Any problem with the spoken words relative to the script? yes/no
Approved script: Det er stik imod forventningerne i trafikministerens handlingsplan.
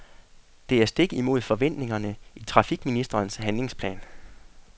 no